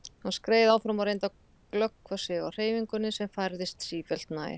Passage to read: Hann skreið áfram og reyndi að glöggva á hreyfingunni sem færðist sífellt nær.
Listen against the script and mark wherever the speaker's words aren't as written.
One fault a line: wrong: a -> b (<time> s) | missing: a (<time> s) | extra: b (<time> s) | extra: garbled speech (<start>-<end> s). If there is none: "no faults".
extra: sig (2.2 s)